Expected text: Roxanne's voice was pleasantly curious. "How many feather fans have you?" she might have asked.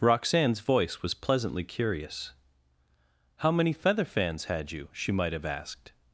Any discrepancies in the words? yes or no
yes